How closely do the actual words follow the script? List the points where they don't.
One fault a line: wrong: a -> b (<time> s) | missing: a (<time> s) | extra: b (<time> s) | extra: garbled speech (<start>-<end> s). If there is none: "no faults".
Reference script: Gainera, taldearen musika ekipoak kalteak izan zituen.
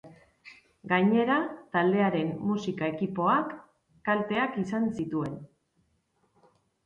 no faults